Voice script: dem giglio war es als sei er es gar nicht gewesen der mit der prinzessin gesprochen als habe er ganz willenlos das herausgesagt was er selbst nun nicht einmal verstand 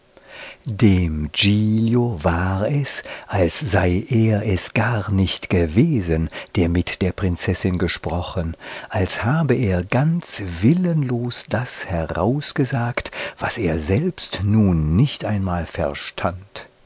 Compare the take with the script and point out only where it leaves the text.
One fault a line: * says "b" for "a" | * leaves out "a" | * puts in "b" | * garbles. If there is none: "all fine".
all fine